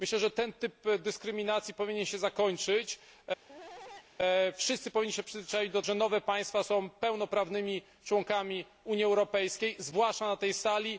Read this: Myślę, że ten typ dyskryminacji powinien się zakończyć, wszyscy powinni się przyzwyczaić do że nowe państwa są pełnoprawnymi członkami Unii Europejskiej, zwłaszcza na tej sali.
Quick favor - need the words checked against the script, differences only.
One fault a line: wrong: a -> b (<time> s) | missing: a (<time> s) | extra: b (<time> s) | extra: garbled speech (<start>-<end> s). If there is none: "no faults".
no faults